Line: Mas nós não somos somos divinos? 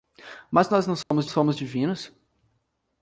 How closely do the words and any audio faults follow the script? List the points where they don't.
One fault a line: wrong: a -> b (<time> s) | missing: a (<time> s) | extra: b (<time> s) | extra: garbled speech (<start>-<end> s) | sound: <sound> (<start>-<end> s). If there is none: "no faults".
sound: dropout (1.0-1.1 s)